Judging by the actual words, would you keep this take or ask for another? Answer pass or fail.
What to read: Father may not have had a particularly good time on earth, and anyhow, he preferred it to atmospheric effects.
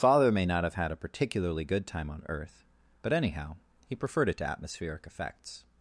fail